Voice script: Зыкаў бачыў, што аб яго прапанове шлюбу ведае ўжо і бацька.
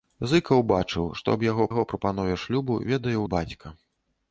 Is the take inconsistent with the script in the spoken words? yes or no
yes